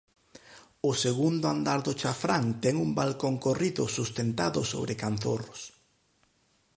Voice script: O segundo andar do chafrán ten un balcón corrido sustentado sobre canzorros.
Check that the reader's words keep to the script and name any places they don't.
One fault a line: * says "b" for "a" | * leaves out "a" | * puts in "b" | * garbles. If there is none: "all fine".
all fine